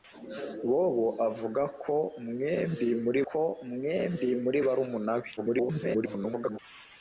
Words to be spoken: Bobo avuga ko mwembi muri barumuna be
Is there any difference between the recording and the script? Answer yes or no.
yes